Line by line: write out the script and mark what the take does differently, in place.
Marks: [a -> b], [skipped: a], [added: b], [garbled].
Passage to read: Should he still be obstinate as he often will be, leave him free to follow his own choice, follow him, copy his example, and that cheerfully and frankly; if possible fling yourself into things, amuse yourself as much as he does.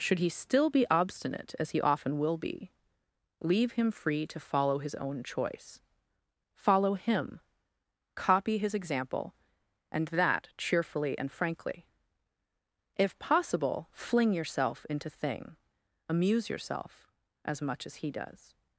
Should he still be obstinate as he often will be, leave him free to follow his own choice, follow him, copy his example, and that cheerfully and frankly; if possible fling yourself into [things, -> thing] amuse yourself as much as he does.